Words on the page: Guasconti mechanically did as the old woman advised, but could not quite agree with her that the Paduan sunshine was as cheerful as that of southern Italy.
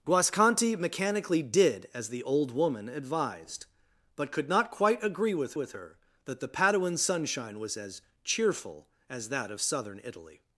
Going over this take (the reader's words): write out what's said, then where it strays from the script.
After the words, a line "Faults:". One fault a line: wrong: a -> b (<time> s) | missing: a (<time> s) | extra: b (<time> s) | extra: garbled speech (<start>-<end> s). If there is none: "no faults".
Guasconti mechanically did as the old woman advised, but could not quite agree with with her that the Paduan sunshine was as cheerful as that of southern Italy.
Faults:
extra: with (5.5 s)